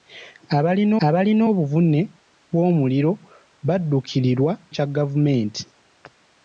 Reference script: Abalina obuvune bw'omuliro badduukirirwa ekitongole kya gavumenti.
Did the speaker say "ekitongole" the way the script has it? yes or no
no